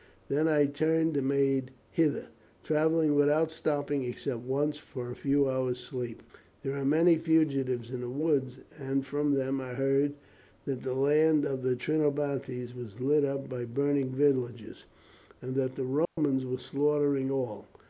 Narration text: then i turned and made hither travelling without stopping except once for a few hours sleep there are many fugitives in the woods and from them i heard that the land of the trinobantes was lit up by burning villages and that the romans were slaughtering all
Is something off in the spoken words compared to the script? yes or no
no